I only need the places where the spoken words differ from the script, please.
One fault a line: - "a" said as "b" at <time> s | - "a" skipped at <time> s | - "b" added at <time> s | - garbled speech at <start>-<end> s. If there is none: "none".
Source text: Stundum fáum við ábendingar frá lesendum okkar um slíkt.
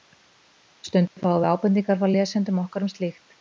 none